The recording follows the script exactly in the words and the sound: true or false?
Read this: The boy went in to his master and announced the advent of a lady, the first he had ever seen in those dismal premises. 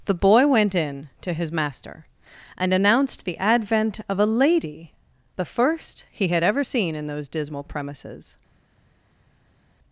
true